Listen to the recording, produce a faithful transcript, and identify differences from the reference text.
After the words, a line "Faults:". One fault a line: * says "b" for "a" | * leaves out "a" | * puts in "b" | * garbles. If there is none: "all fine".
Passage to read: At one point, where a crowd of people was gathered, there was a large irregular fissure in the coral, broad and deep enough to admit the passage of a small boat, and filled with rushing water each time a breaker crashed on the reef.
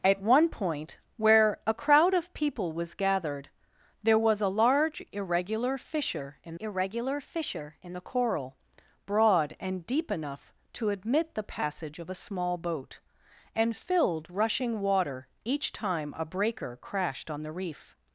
At one point, where a crowd of people was gathered, there was a large irregular fissure in irregular fissure in the coral, broad and deep enough to admit the passage of a small boat, and filled rushing water each time a breaker crashed on the reef.
Faults:
* puts in "irregular fissure in"
* leaves out "with"